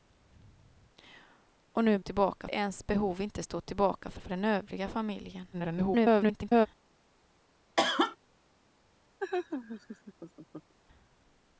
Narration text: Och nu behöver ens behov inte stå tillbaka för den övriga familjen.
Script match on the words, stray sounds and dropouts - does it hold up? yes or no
no